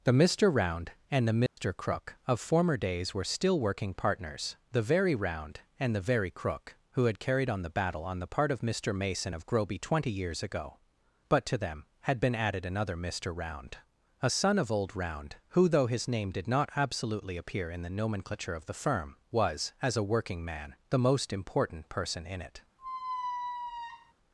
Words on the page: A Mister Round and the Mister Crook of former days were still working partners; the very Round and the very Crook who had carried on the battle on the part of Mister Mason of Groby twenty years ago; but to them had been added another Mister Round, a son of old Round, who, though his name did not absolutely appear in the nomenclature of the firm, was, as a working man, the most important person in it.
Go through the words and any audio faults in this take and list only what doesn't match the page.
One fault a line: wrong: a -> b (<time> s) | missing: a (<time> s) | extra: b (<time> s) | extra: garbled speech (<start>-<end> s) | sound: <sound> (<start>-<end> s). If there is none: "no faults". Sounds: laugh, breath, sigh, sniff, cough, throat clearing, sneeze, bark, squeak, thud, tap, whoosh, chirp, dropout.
wrong: A -> The (0.0 s)
sound: dropout (1.5-1.6 s)
sound: squeak (22.8-24.1 s)